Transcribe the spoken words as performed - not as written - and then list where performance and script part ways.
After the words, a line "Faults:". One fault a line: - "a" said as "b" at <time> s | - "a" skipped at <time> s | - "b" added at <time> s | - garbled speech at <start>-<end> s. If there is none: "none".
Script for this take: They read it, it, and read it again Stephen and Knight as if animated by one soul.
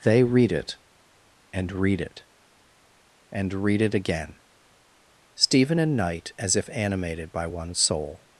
They read it, and read it, and read it again Stephen and Knight as if animated by one soul.
Faults:
- "and read" added at 1.5 s